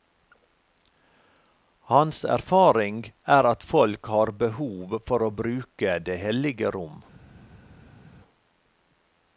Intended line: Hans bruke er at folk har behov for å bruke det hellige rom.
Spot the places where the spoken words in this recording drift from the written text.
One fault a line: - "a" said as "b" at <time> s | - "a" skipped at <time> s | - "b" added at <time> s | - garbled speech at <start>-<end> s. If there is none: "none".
- "bruke" said as "erfaring" at 2.2 s